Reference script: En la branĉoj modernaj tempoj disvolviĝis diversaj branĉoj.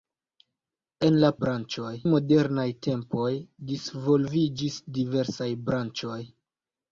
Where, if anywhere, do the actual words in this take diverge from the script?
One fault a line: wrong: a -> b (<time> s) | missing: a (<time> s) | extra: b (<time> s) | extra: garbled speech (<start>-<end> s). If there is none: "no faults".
no faults